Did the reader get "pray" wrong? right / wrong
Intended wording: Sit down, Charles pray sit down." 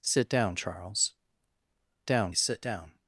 wrong